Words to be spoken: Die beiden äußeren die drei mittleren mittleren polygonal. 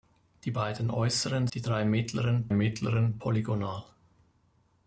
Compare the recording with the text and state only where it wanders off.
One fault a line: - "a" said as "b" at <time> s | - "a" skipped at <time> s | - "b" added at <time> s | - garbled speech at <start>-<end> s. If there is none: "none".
none